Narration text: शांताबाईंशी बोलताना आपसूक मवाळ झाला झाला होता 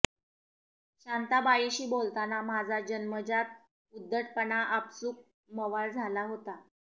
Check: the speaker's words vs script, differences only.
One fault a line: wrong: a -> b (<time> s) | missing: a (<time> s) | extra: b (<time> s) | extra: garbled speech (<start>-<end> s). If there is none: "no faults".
extra: माझा जन्मजात उद्धटपणा (2.4 s)
missing: झाला (6.2 s)